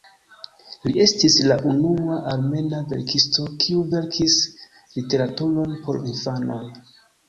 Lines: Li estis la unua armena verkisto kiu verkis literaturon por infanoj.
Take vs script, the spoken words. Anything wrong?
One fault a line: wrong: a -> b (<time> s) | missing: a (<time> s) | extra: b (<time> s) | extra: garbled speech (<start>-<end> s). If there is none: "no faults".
no faults